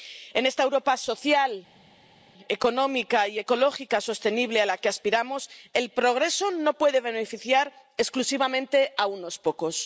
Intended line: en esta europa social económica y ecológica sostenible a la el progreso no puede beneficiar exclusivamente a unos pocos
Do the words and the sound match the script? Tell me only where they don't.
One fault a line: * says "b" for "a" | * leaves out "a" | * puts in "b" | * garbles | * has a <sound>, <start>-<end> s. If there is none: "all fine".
* puts in "que aspiramos"